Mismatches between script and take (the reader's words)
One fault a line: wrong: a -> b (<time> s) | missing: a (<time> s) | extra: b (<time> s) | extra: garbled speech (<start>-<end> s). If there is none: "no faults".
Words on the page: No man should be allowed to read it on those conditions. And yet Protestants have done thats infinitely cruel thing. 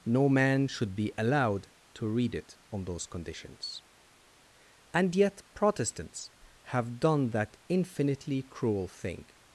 wrong: thats -> that (7.3 s)